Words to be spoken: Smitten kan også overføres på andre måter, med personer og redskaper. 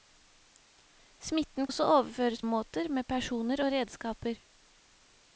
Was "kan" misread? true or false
true